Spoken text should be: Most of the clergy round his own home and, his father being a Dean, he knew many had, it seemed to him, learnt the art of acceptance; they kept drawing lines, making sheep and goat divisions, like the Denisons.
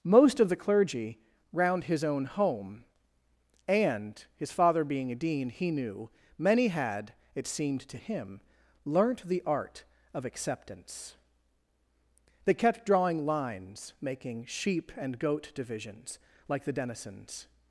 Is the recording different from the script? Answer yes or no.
no